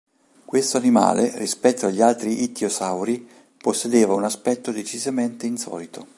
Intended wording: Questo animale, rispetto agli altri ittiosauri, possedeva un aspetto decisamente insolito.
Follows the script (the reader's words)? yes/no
yes